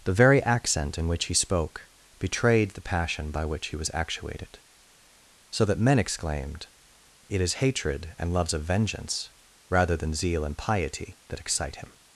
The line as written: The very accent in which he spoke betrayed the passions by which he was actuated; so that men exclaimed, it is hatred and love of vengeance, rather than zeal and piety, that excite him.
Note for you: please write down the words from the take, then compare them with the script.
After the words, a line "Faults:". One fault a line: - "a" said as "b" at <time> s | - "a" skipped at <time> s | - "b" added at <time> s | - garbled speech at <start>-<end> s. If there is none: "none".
The very accent in which he spoke betrayed the passion by which he was actuated; so that men exclaimed, it is hatred and loves of vengeance, rather than zeal and piety, that excite him.
Faults:
- "passions" said as "passion" at 2.8 s
- "love" said as "loves" at 8.3 s